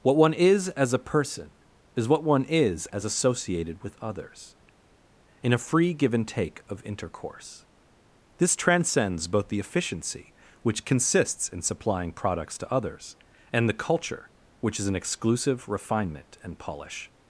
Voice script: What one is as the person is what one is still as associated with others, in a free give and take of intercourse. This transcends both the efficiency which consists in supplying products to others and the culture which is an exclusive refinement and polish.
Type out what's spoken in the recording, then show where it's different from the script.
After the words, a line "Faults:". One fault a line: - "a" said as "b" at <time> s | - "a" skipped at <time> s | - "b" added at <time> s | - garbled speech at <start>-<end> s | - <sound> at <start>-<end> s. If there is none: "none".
What one is as a person is what one is as associated with others, in a free give and take of intercourse. This transcends both the efficiency which consists in supplying products to others and the culture which is an exclusive refinement and polish.
Faults:
- "the" said as "a" at 0.9 s
- "still" skipped at 2.9 s